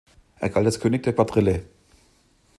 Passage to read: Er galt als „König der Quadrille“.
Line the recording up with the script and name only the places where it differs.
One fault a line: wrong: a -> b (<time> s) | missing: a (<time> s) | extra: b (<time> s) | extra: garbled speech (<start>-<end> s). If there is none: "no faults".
no faults